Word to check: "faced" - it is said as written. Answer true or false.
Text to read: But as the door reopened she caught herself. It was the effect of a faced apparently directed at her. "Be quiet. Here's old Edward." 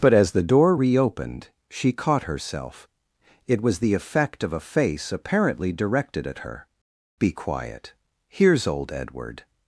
false